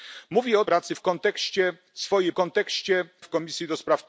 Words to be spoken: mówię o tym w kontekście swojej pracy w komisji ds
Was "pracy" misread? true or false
true